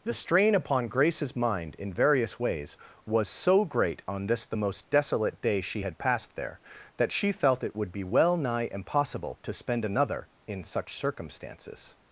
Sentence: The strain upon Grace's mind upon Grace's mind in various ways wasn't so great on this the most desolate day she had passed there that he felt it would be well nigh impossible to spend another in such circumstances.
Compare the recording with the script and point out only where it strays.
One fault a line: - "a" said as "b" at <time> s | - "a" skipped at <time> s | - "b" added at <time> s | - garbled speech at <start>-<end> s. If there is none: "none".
- "upon Grace's mind" skipped at 1.8 s
- "wasn't" said as "was" at 3.0 s
- "he" said as "she" at 7.1 s